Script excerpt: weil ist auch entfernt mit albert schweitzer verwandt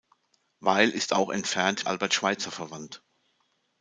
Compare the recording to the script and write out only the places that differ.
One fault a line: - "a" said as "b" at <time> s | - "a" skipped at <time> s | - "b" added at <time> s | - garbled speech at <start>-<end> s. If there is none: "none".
- "mit" skipped at 1.9 s